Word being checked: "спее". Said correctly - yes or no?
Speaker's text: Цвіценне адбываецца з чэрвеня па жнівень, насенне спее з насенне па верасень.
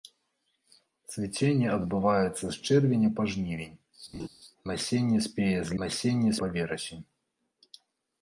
yes